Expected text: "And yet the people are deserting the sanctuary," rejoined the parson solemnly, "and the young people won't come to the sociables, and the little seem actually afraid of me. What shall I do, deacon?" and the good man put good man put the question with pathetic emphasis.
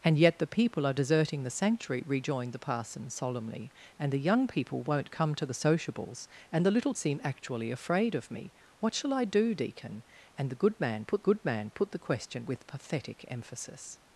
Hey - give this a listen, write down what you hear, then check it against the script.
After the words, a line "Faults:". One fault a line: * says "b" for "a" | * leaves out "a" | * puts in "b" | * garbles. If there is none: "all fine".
"And yet the people are deserting the sanctuary," rejoined the parson solemnly, "and the young people won't come to the sociables, and the little seem actually afraid of me. What shall I do, deacon?" and the good man put good man put the question with pathetic emphasis.
Faults:
all fine